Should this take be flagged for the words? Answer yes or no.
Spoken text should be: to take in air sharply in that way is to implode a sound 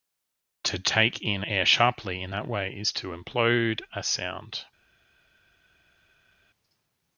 no